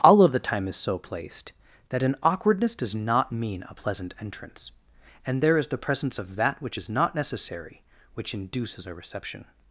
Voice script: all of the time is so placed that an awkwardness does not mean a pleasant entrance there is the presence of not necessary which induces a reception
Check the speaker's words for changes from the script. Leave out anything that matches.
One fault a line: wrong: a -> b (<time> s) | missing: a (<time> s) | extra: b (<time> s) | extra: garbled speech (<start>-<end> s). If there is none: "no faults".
extra: and (5.3 s)
extra: that which is (6.4 s)